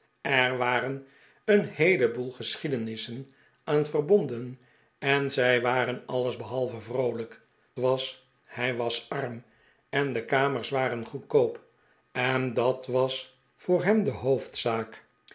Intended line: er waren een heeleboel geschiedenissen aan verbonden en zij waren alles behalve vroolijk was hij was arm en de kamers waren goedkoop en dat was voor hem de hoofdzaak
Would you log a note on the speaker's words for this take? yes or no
no